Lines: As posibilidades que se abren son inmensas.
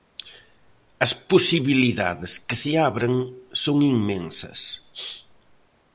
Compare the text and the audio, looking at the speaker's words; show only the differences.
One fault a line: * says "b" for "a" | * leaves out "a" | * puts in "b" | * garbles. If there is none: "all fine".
all fine